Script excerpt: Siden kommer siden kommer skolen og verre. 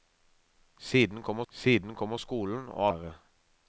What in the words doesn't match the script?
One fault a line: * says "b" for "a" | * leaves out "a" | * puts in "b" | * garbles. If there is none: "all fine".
all fine